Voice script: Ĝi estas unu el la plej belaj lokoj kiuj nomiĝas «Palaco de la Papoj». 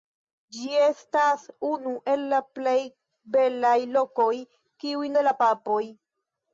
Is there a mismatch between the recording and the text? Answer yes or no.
yes